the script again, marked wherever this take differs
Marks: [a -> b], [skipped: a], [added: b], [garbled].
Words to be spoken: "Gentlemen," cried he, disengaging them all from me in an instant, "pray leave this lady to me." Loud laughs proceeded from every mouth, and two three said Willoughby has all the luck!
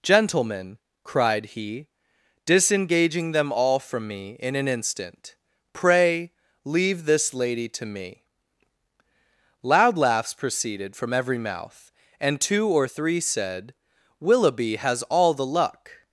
"Gentlemen," cried he, disengaging them all from me in an instant, "pray leave this lady to me." Loud laughs proceeded from every mouth, and two [added: or] three said Willoughby has all the luck!